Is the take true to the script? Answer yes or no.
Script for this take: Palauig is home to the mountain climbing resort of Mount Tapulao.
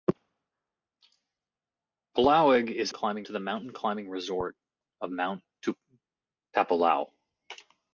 no